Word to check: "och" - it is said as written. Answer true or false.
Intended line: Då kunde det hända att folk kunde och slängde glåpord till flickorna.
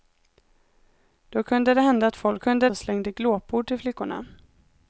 true